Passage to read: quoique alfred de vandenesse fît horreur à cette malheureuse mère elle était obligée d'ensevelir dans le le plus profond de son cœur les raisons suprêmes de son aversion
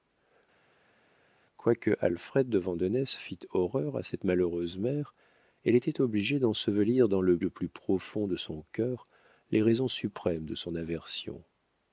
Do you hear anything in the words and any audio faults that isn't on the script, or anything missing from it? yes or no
no